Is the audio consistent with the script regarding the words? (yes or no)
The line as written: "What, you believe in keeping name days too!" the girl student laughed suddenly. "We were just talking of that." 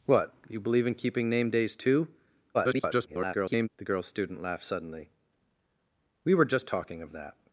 no